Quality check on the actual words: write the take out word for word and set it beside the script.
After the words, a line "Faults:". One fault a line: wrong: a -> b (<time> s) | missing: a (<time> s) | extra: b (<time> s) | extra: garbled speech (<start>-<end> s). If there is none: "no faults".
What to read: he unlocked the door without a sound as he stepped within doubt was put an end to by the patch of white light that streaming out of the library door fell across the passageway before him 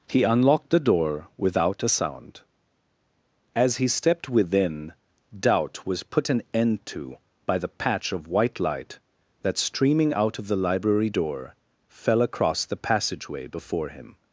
he unlocked the door without a sound as he stepped within doubt was put an end to by the patch of white light that streaming out of the library door fell across the passageway before him
Faults:
no faults